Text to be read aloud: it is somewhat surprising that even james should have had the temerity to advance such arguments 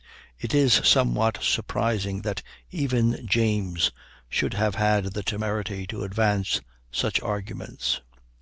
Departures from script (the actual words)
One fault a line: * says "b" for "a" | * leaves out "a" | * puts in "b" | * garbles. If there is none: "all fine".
all fine